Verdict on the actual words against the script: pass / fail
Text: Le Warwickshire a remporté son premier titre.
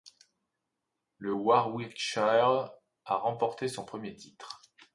pass